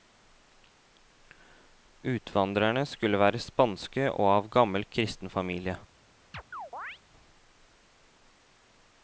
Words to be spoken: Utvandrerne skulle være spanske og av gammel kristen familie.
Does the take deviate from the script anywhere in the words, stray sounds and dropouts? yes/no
yes